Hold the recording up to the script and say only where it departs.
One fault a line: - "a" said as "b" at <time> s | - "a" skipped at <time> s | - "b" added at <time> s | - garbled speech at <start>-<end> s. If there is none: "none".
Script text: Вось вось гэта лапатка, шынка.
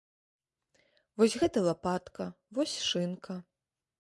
- "вось" skipped at 1.4 s
- "вось" added at 2.6 s